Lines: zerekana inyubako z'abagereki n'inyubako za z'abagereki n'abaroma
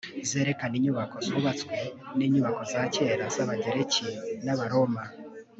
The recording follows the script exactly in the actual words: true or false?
false